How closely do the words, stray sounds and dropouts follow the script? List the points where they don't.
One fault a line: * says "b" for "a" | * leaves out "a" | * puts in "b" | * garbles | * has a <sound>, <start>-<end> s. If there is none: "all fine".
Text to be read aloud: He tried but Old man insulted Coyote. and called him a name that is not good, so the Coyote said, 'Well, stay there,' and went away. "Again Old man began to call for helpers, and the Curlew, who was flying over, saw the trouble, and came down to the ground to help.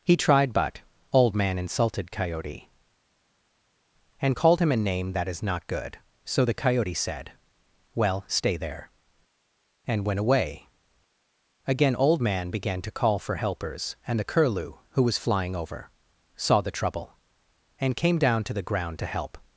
all fine